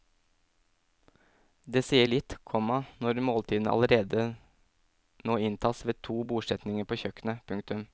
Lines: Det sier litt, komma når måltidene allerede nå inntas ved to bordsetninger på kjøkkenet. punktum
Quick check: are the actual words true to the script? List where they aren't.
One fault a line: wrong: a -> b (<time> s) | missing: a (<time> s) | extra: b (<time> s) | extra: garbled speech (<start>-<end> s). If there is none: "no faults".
no faults